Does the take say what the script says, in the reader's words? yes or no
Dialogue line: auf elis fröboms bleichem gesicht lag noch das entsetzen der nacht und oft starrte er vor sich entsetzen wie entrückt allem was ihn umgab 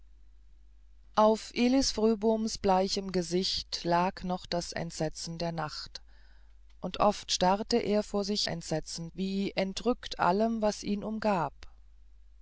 yes